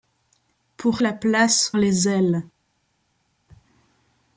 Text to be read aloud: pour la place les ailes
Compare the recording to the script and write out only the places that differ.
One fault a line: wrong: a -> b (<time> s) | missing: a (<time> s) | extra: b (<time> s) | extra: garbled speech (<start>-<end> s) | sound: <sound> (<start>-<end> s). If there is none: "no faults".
no faults